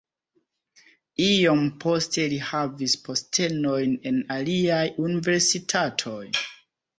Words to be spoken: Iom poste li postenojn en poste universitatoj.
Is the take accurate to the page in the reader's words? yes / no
no